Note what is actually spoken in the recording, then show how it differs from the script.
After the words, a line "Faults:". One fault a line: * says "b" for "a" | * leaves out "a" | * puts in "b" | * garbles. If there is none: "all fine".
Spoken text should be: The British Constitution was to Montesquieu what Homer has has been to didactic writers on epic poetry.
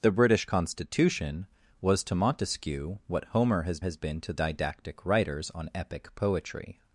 The British Constitution was to Montesquieu what Homer has has been to didactic writers on epic poetry.
Faults:
all fine